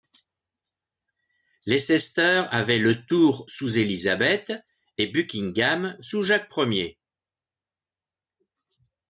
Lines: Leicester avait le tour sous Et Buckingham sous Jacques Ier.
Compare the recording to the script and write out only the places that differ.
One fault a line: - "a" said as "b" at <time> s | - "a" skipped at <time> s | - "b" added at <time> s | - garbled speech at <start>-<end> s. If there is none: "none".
- "Élisabeth" added at 3.8 s